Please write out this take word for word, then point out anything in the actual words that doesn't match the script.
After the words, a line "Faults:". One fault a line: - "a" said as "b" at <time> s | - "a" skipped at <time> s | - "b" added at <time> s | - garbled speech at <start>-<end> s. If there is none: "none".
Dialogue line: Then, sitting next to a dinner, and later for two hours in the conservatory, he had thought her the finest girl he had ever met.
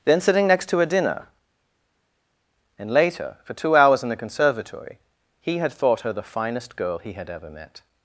Then, sitting next to a dinner, and later for two hours in the conservatory, he had thought her the finest girl he had ever met.
Faults:
none